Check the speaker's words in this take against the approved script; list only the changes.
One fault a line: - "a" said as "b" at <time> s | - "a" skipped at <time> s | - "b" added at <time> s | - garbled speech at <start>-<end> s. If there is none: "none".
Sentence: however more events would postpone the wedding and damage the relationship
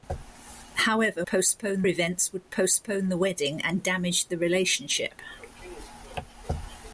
- "more" said as "postpone" at 1.3 s